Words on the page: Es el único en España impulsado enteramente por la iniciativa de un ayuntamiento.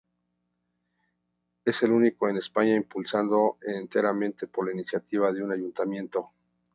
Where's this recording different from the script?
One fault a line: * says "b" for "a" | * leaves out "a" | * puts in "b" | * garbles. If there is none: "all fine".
all fine